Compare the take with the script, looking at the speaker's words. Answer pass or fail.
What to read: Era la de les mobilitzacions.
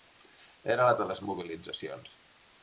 pass